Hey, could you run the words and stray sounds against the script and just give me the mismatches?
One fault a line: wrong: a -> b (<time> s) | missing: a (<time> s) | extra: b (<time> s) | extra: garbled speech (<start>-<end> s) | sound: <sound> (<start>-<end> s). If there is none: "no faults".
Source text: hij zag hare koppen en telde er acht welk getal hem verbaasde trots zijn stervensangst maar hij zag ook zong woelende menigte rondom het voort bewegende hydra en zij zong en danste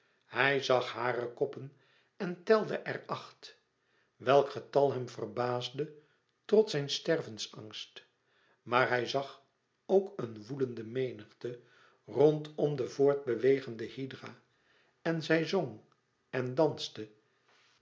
wrong: zong -> een (10.2 s)
wrong: het -> de (12.7 s)